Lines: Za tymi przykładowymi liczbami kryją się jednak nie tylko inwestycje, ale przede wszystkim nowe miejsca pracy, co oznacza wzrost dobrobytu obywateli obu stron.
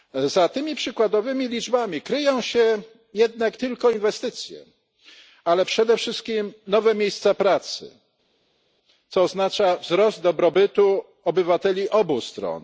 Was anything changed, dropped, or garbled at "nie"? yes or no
yes